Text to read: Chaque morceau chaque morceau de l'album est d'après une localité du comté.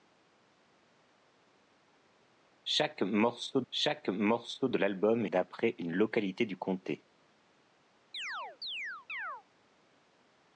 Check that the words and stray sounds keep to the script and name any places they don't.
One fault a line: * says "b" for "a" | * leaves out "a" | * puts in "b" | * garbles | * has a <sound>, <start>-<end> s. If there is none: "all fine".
* has a chirp, 8.1-9.4 s